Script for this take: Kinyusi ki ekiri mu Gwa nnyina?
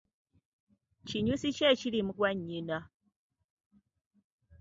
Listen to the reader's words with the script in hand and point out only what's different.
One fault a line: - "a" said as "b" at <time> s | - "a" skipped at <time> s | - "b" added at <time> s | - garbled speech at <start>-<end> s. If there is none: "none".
none